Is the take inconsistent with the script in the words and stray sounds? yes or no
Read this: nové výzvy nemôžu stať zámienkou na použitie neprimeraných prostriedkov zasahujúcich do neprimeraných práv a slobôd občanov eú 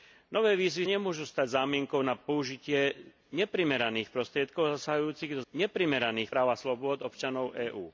no